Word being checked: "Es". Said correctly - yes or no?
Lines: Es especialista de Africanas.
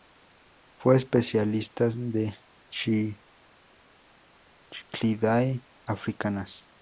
no